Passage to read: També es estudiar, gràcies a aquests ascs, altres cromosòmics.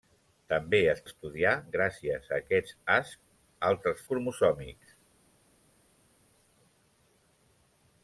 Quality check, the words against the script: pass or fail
pass